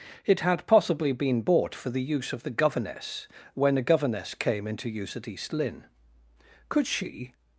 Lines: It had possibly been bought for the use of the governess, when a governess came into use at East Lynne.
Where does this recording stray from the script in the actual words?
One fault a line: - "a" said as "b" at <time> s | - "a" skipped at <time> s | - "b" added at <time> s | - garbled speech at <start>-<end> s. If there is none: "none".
- "Could she" added at 6.7 s